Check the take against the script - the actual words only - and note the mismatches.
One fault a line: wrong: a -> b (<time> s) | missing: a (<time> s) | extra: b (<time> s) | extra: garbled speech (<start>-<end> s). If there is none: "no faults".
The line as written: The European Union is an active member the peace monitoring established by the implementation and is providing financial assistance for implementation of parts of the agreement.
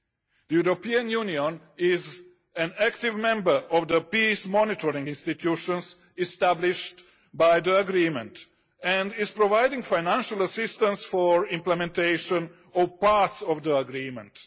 extra: of (3.7 s)
extra: institutions (5.1 s)
wrong: implementation -> agreement (7.8 s)